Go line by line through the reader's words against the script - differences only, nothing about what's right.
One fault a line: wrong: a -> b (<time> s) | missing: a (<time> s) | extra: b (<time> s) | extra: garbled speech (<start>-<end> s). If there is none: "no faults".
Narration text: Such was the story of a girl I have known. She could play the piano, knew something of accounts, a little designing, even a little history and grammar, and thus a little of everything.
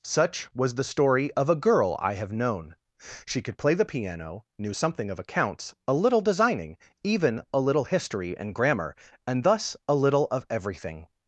no faults